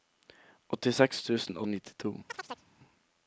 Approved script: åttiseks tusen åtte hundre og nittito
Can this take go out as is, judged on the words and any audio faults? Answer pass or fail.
fail